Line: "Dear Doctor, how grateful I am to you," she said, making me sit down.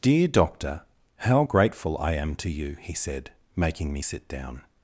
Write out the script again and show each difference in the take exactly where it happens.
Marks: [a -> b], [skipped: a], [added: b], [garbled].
"Dear Doctor, how grateful I am to you," [she -> he] said, making me sit down.